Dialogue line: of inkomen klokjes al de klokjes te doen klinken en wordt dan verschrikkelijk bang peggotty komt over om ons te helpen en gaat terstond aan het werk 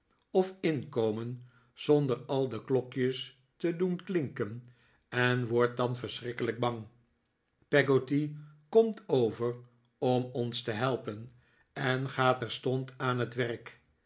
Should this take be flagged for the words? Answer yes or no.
yes